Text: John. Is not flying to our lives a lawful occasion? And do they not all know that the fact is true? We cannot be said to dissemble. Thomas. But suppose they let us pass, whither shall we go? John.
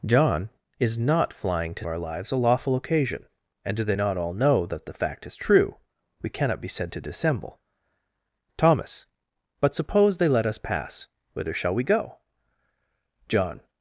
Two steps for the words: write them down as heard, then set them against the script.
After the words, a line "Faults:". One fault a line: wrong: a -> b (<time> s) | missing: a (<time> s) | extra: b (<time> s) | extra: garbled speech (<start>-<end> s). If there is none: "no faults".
John. Is not flying to our lives a lawful occasion? And do they not all know that the fact is true? We cannot be said to dissemble. Thomas. But suppose they let us pass, whither shall we go? John.
Faults:
no faults